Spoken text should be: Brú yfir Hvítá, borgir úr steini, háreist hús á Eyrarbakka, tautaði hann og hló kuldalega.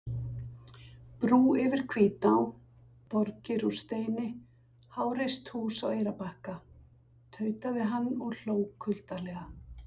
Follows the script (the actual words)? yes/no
yes